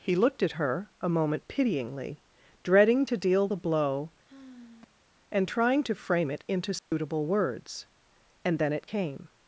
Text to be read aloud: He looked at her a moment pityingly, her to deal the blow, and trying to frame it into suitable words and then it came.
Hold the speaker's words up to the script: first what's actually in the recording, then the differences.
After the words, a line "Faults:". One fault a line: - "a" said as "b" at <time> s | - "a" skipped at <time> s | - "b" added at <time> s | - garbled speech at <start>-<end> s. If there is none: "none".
He looked at her a moment pityingly, dreading to deal the blow, and trying to frame it into suitable words and then it came.
Faults:
- "her" said as "dreading" at 2.6 s